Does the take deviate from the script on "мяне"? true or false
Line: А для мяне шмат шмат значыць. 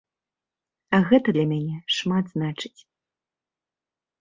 false